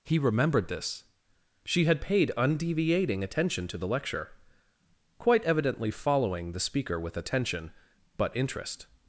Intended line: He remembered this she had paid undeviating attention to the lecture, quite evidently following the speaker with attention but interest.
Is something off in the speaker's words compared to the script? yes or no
no